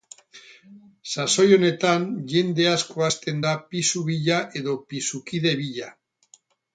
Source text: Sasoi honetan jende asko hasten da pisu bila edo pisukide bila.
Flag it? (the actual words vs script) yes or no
no